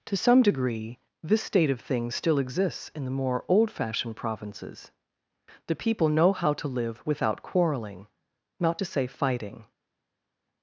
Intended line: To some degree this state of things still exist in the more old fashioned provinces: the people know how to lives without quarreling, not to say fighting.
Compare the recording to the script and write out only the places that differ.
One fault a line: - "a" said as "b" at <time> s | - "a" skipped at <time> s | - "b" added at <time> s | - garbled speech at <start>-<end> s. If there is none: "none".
- "exist" said as "exists" at 2.4 s
- "lives" said as "live" at 6.7 s